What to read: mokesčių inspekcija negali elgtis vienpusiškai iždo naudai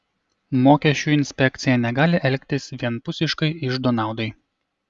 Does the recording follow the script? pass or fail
pass